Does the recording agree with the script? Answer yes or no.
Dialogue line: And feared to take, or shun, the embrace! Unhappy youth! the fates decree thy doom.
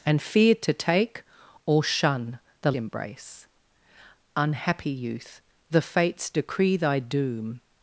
yes